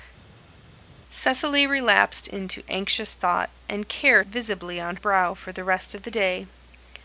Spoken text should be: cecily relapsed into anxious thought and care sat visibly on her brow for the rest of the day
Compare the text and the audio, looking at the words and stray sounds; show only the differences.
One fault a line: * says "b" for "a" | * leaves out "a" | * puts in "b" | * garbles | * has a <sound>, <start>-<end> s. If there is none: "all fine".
* leaves out "sat"
* leaves out "her"